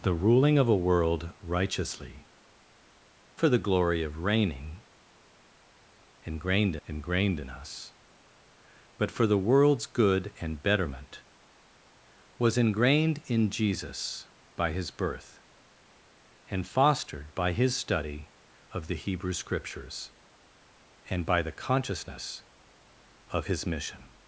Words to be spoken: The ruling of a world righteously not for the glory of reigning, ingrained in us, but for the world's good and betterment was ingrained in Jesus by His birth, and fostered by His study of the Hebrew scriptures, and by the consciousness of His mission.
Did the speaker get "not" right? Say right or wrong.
wrong